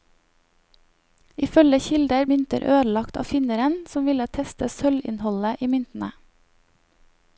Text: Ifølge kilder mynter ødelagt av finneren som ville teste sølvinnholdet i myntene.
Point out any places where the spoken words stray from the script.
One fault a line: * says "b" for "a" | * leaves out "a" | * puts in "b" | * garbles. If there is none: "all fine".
all fine